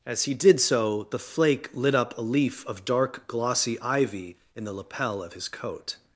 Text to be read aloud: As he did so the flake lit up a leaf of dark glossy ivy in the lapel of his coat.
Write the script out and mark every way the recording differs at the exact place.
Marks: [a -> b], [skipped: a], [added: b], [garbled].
As he did so the flake lit up a leaf of dark glossy ivy in the lapel of his coat.